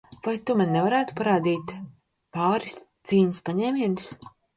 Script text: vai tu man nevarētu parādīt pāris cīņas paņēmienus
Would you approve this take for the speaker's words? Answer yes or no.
yes